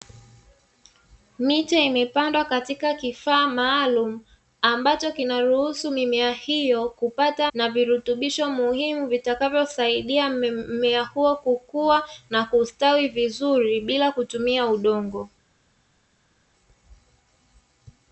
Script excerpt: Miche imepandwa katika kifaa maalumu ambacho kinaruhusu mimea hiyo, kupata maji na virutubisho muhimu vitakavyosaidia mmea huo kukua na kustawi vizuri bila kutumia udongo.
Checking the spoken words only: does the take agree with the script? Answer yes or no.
no